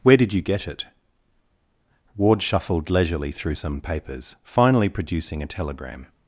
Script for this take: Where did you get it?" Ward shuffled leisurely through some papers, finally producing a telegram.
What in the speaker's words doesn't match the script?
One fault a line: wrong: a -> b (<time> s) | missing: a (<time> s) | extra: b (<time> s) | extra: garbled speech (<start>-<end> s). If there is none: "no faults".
no faults